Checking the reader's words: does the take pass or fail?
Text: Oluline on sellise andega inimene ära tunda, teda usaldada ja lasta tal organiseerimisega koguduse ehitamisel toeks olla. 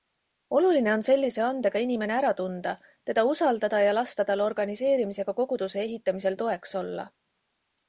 pass